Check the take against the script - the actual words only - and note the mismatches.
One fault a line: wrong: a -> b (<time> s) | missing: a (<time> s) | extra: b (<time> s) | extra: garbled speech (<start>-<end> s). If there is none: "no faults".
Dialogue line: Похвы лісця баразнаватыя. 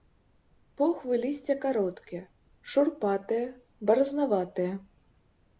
extra: кароткія шурпатыя (1.6 s)